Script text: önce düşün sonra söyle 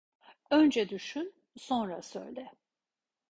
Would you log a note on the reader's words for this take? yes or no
no